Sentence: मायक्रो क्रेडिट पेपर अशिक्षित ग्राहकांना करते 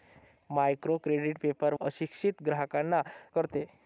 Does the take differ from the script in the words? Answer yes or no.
no